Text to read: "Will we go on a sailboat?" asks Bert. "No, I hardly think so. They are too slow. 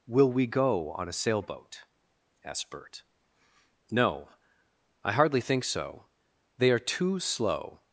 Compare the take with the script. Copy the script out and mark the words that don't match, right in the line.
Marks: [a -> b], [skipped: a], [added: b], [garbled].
"Will we go on a sailboat?" [asks -> asked] Bert. "No, I hardly think so. They are too slow.